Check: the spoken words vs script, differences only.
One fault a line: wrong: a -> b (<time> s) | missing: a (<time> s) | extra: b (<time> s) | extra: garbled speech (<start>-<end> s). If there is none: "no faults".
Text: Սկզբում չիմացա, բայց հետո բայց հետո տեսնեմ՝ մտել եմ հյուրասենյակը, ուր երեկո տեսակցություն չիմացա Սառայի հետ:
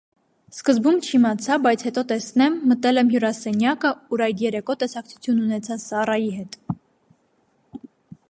missing: բայց հետո (2.0 s)
extra: այդ (4.3 s)
wrong: չիմացա -> ունեցա (5.5 s)